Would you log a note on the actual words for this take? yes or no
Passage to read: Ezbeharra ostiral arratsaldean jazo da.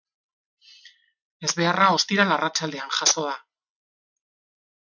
no